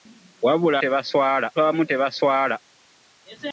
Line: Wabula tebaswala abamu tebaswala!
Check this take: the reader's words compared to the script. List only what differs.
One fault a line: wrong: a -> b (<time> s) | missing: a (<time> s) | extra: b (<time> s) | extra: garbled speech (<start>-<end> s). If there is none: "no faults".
no faults